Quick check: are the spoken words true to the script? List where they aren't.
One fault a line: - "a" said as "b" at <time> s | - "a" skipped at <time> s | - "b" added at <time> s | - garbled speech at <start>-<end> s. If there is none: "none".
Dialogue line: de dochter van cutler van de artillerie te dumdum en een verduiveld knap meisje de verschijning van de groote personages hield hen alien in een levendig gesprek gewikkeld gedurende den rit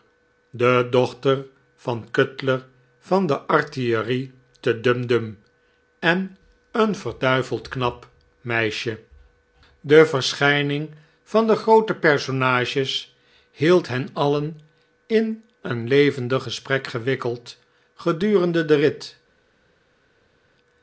none